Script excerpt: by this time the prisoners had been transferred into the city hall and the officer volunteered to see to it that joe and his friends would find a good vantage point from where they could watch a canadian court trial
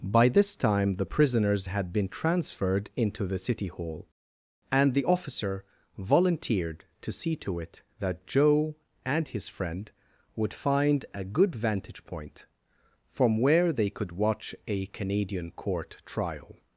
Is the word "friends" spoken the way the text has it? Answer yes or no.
no